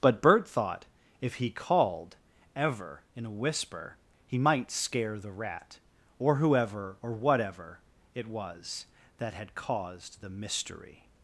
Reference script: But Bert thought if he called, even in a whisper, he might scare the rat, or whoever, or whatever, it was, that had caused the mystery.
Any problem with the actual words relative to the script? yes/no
yes